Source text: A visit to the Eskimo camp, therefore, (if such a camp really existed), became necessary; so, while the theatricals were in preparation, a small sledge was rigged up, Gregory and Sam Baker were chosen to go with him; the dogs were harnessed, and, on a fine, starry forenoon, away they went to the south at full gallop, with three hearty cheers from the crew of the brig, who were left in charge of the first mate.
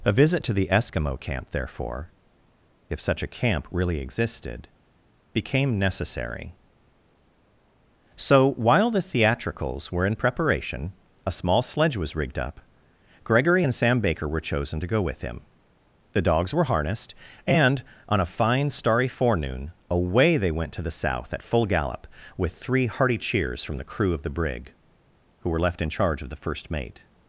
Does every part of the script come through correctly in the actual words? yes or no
yes